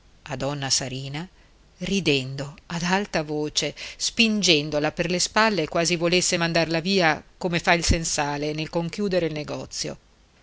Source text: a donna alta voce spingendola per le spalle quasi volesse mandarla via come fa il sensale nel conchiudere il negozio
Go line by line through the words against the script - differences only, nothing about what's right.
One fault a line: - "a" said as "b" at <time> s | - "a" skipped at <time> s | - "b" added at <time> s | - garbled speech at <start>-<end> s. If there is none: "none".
- "sarina ridendo ad" added at 0.7 s